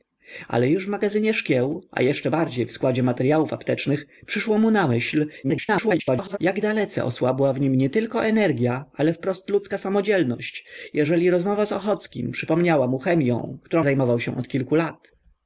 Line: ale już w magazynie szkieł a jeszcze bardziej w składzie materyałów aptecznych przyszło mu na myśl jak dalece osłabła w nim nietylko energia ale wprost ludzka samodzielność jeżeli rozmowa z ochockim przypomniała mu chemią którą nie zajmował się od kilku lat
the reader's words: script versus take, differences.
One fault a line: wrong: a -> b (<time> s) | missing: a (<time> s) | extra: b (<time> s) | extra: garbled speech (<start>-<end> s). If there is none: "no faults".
extra: garbled speech (5.4-6.4 s)
missing: nie (13.9 s)